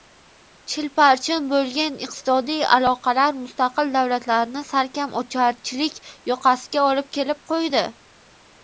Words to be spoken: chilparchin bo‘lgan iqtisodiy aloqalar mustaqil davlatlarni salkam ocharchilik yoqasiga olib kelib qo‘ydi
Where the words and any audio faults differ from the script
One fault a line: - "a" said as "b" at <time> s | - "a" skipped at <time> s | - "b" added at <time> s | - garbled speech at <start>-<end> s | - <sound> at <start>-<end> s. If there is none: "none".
none